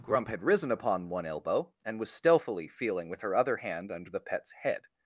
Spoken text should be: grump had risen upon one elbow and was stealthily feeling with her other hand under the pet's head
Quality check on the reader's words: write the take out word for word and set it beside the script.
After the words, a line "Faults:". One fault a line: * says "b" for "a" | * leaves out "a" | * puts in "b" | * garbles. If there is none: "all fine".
grump had risen upon one elbow and was stealthily feeling with her other hand under the pet's head
Faults:
all fine